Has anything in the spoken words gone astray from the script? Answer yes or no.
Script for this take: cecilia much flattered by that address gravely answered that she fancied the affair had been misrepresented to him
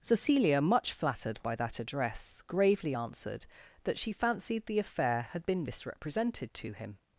no